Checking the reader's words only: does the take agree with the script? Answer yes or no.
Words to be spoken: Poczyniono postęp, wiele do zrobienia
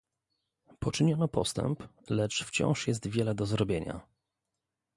no